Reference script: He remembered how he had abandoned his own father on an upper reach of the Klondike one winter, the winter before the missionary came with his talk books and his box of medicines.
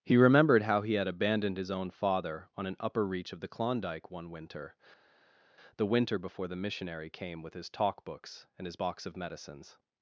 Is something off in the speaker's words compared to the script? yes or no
no